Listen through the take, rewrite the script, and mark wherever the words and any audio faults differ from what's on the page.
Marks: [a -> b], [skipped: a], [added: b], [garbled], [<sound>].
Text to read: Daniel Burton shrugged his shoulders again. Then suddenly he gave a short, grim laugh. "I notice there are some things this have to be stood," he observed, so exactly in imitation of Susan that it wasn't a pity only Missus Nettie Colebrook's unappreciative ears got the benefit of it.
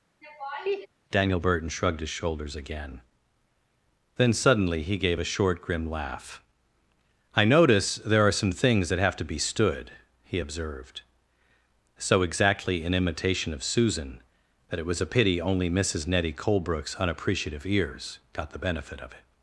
[laugh] Daniel Burton shrugged his shoulders again. Then suddenly he gave a short, grim laugh. "I notice there are some things [this -> that] have to be stood," he observed, so exactly in imitation of Susan that it [wasn't -> was] a pity only Missus Nettie Colebrook's unappreciative ears got the benefit of it.